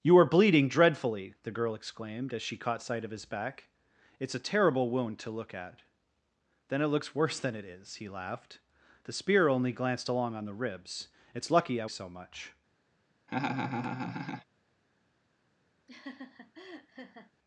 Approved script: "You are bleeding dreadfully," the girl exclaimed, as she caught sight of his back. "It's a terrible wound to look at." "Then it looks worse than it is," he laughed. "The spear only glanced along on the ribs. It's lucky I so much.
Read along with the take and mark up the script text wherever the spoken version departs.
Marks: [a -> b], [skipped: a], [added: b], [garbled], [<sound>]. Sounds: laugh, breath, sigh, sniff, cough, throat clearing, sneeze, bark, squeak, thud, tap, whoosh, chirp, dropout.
"You are bleeding dreadfully," the girl exclaimed, as she caught sight of his back. "It's a terrible wound to look at." "Then it looks worse than it is," he laughed. "The spear only glanced along on the ribs. It's lucky I so much. [laugh] [laugh]